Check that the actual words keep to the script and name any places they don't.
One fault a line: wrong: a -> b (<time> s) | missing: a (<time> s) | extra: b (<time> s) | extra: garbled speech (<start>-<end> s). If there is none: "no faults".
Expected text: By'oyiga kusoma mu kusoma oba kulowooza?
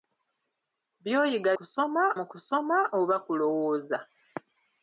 no faults